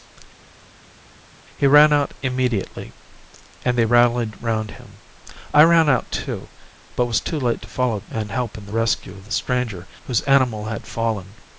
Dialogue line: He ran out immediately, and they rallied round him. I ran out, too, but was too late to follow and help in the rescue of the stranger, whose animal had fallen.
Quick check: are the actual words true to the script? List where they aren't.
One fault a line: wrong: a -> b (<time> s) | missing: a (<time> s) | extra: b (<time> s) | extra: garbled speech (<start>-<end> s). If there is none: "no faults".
no faults